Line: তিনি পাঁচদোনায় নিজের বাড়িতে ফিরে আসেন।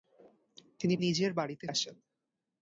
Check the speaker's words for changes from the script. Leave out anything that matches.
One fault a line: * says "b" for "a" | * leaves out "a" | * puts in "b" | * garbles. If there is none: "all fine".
* leaves out "পাঁচদোনায়"
* leaves out "ফিরে"